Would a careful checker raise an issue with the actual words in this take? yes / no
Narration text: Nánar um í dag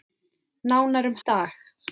no